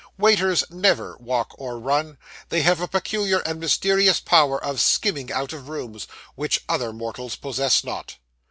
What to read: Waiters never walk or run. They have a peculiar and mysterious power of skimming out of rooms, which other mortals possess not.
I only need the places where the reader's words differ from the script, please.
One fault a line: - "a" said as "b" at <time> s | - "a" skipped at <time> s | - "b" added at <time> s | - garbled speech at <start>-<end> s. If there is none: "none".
none